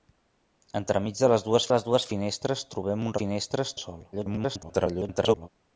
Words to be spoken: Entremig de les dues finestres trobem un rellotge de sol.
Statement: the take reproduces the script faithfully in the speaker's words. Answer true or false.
false